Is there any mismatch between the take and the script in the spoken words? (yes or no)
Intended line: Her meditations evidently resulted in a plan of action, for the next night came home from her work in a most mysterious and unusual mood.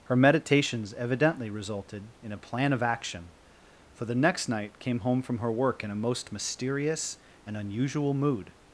no